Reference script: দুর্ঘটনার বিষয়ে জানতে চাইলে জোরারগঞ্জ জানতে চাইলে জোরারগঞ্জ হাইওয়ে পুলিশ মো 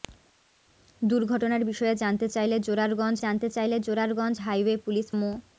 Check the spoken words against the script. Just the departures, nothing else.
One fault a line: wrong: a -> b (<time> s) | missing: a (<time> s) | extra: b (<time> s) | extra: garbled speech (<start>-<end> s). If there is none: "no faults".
no faults